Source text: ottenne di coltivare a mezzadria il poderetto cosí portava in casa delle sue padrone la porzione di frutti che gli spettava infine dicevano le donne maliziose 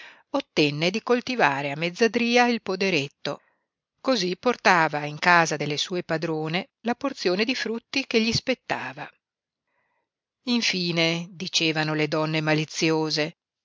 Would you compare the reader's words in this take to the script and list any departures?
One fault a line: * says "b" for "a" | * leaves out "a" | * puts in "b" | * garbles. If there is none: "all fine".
all fine